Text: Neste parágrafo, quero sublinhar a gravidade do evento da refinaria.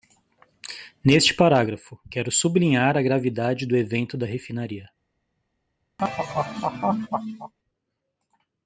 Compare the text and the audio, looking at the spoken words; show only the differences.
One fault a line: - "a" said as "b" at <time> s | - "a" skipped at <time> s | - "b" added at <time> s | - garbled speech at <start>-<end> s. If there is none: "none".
none